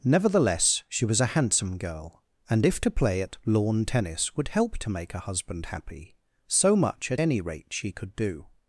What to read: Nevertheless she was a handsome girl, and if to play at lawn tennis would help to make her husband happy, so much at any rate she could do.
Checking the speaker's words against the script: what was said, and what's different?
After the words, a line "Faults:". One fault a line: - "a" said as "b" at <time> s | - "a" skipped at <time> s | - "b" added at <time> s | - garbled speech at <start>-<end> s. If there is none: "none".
Nevertheless she was a handsome girl, and if to play at lawn tennis would help to make her husband happy, so much at any rate she could do.
Faults:
none